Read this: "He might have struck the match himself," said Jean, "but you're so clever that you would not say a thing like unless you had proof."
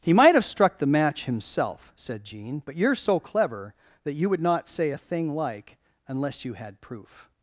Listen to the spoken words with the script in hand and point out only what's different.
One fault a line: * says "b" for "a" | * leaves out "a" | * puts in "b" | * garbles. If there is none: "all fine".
all fine